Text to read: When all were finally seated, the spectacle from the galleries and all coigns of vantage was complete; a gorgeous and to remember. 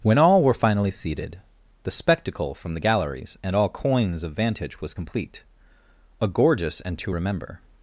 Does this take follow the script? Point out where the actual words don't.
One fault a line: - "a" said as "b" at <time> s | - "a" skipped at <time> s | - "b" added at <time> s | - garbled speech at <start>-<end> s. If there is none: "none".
none